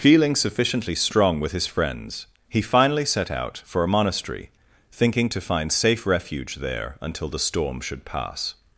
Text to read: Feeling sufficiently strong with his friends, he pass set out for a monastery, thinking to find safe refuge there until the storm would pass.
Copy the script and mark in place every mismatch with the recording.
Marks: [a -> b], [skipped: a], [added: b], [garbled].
Feeling sufficiently strong with his friends, he [pass -> finally] set out for a monastery, thinking to find safe refuge there until the storm [would -> should] pass.